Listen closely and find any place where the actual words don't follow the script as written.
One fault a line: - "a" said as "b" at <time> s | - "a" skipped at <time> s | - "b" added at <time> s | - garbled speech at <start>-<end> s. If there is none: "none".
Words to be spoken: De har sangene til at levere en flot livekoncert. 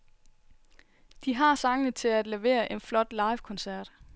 none